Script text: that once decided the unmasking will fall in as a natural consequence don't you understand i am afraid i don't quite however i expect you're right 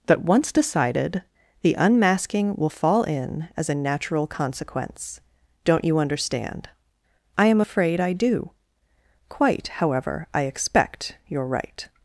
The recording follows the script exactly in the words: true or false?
false